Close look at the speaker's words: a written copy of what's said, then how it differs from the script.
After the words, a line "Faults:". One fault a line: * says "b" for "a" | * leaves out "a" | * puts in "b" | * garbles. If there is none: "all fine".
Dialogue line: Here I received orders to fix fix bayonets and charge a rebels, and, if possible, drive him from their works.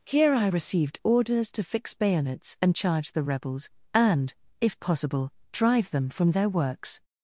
Here I received orders to fix bayonets and charge the rebels, and, if possible, drive them from their works.
Faults:
* leaves out "fix"
* says "the" for "a"
* says "them" for "him"